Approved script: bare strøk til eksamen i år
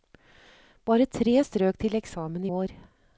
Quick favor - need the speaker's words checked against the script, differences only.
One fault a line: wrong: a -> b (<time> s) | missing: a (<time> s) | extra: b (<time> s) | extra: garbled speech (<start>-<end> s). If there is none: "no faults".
extra: tre (1.1 s)